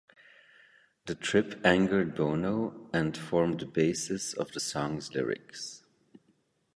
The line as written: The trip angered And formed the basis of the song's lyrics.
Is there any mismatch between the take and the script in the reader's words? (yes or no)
yes